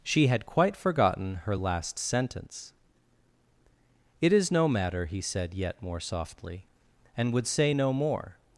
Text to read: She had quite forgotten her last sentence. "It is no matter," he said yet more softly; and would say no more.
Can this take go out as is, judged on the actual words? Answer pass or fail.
pass